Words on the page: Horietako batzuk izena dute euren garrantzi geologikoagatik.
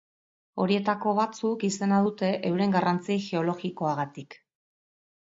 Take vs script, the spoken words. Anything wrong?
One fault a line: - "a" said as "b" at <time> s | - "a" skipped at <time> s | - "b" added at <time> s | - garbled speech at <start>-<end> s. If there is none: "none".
none